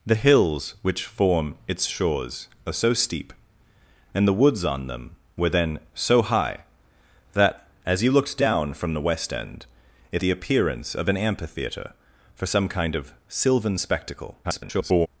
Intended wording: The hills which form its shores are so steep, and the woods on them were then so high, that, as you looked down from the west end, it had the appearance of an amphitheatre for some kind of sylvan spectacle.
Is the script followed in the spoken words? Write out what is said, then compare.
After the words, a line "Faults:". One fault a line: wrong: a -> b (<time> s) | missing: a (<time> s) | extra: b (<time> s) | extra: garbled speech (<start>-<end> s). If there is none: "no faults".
The hills which form its shores are so steep, and the woods on them were then so high, that, as you looked down from the west end, it the appearance of an amphitheatre for some kind of sylvan spectacle. [garbled]
Faults:
missing: had (10.2 s)
extra: garbled speech (14.4-15.1 s)